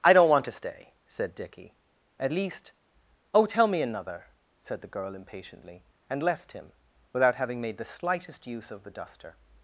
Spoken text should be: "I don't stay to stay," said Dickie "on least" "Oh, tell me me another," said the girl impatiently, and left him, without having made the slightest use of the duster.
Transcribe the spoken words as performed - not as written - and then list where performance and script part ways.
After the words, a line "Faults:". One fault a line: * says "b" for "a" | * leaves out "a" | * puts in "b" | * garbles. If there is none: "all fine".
"I don't want to stay," said Dickie "at least" "Oh, tell me another," said the girl impatiently, and left him, without having made the slightest use of the duster.
Faults:
* says "want" for "stay"
* says "at" for "on"
* leaves out "me"